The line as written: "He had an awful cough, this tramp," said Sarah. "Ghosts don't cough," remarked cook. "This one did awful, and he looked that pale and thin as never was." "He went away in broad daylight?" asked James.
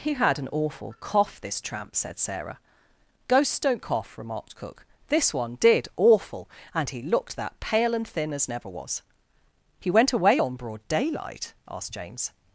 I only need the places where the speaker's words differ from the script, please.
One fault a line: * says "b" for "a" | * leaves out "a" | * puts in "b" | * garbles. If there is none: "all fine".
* says "on" for "in"